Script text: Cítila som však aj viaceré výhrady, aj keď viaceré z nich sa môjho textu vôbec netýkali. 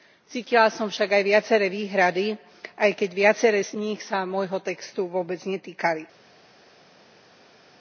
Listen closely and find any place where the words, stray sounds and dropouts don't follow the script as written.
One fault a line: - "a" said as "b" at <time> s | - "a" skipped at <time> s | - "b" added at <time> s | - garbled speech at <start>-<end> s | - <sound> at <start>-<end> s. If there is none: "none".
none